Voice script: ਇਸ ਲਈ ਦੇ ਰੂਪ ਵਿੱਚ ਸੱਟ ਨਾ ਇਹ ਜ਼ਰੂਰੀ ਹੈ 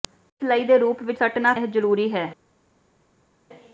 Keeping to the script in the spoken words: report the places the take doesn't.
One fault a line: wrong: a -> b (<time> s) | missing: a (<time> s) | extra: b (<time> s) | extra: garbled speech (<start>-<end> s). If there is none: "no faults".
no faults